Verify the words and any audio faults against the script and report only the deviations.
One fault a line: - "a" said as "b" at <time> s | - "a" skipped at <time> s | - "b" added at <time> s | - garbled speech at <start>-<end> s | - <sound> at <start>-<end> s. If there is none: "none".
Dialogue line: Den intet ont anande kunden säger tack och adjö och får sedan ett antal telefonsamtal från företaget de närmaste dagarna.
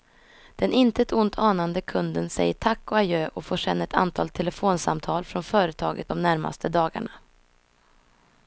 none